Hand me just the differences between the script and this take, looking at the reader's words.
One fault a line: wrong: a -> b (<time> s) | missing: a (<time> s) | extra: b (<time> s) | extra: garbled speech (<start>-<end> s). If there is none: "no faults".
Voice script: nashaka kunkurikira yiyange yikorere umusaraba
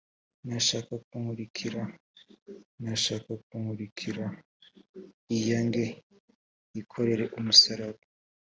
extra: nashaka kunkurikira (2.8 s)